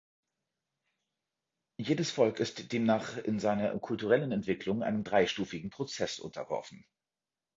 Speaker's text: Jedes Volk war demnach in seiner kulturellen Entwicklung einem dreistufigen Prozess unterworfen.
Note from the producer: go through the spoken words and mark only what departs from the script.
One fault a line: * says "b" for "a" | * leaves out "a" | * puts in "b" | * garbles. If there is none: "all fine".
* says "ist" for "war"